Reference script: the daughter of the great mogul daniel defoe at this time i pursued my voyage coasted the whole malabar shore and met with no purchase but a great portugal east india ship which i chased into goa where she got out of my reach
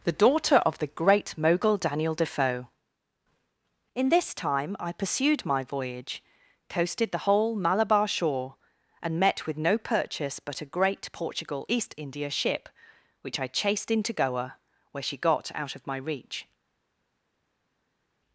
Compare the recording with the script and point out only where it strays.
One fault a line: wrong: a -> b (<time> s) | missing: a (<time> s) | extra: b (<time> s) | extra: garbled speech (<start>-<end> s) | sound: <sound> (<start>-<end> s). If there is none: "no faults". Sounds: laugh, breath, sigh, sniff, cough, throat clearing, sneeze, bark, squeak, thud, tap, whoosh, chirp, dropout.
wrong: at -> in (3.9 s)